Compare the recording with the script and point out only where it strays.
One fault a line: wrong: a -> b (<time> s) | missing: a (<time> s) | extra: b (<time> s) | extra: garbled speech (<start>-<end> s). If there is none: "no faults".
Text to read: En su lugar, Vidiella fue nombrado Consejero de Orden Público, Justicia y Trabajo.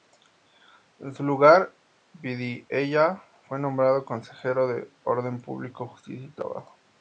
no faults